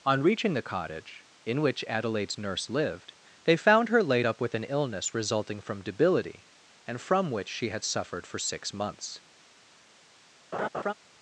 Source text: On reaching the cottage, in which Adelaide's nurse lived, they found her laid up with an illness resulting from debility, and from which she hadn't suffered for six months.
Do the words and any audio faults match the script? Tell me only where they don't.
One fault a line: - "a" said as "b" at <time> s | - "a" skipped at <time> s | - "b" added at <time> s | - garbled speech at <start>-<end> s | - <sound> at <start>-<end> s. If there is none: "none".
- "hadn't" said as "had" at 7.7 s
- laugh at 10.5-10.9 s